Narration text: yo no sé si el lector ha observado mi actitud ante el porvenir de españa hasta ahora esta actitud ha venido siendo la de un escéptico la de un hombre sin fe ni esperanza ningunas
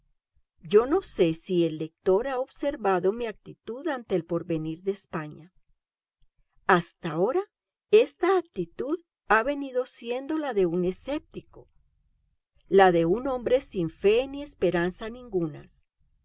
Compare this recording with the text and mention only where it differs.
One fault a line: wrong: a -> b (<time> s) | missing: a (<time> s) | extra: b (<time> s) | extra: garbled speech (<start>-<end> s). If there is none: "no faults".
no faults